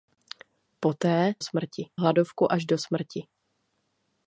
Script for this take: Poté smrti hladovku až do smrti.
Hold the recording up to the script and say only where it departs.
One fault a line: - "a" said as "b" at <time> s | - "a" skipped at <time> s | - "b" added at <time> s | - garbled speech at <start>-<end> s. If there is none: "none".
none